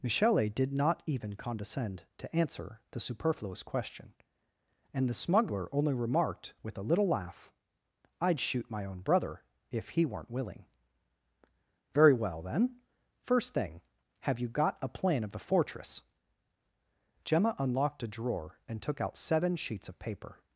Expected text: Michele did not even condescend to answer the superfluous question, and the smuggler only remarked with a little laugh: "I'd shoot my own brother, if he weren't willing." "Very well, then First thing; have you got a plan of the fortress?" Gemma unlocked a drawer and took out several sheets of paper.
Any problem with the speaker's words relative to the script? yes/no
yes